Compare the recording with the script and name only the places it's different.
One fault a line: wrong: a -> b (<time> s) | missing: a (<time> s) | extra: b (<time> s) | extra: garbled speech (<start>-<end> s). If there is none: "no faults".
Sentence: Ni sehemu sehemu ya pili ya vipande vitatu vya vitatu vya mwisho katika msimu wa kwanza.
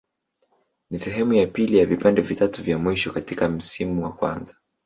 missing: sehemu (1.3 s)
missing: vitatu vya (2.8 s)